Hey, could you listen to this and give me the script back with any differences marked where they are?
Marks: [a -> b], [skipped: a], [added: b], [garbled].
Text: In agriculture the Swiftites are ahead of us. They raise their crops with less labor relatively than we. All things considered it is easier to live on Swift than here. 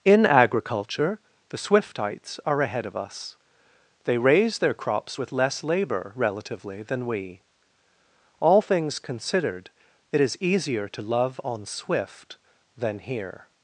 In agriculture the Swiftites are ahead of us. They raise their crops with less labor relatively than we. All things considered it is easier to [live -> love] on Swift than here.